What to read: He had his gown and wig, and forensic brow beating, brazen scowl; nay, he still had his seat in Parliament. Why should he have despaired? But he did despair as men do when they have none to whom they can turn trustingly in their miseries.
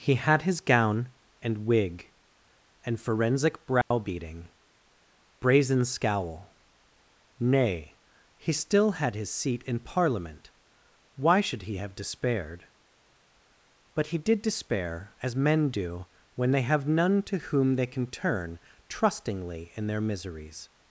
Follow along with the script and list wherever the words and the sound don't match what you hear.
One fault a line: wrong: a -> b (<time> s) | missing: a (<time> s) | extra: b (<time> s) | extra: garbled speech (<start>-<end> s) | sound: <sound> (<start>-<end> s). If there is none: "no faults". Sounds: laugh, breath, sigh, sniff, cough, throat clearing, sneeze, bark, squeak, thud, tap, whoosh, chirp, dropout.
sound: dropout (3.8-3.9 s)